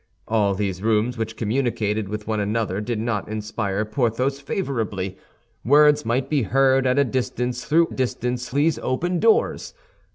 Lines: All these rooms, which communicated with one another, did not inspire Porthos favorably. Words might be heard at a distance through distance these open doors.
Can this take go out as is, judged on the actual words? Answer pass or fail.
pass